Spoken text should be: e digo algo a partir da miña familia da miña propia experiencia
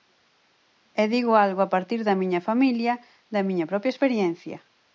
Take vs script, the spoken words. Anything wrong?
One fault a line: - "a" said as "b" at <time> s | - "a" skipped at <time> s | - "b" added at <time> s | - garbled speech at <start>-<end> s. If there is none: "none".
none